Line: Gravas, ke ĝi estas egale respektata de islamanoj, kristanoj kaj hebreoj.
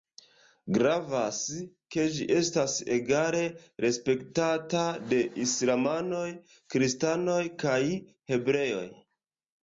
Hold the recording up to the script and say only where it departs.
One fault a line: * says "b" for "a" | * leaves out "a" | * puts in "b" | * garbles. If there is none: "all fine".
all fine